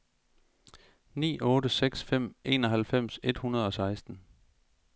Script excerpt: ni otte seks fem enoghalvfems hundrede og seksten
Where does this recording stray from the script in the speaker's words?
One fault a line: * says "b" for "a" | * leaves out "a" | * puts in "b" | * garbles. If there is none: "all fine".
* puts in "et"